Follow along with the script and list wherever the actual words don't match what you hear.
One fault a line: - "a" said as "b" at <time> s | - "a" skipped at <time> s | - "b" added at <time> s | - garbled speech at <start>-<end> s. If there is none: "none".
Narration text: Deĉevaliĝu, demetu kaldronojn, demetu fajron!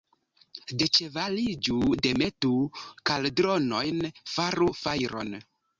- "demetu" said as "faru" at 4.4 s